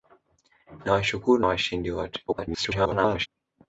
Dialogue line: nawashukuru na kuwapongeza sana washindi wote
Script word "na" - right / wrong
wrong